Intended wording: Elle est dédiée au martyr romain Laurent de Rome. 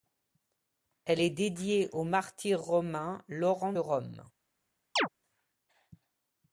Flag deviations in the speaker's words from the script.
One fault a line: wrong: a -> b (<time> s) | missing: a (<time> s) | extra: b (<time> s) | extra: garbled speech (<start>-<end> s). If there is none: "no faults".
missing: de (3.7 s)